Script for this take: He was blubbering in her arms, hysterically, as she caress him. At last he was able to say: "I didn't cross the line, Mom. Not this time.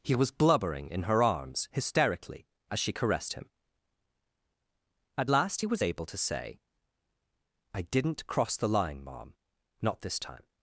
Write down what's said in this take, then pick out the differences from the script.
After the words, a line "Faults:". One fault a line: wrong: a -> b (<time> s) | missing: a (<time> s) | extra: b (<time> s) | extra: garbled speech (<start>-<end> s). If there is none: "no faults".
He was blubbering in her arms, hysterically, as she caressed him. At last he was able to say: "I didn't cross the line, Mom. Not this time.
Faults:
wrong: caress -> caressed (2.9 s)